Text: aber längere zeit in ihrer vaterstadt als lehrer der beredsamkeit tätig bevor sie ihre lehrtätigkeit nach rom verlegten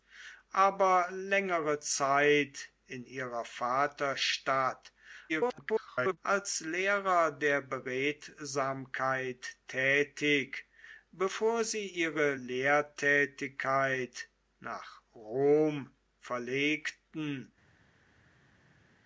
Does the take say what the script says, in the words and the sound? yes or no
no